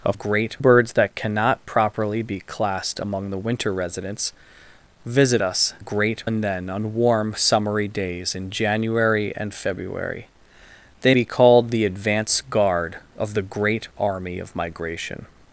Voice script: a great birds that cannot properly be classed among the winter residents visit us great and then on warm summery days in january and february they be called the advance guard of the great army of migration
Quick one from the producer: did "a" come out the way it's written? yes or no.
yes